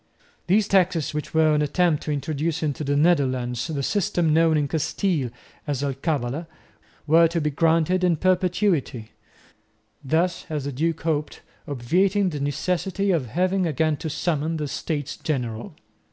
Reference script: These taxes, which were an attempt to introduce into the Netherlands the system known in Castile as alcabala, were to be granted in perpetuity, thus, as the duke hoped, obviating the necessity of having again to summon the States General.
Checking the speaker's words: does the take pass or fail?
pass